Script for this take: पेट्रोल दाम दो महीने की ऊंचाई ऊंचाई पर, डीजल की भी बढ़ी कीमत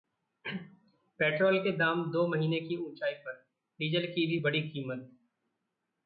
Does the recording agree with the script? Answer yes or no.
no